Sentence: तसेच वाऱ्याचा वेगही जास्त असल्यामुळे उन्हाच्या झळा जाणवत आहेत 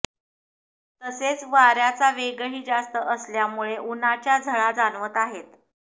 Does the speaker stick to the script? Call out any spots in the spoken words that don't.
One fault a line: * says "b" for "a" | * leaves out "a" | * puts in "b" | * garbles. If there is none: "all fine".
all fine